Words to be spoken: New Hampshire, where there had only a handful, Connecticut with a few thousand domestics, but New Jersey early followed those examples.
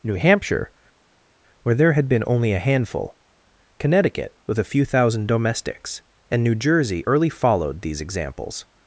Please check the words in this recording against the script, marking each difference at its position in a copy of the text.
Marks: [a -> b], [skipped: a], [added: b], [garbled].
New Hampshire, where there had [added: been] only a handful, Connecticut with a few thousand domestics, [but -> and] New Jersey early followed [those -> these] examples.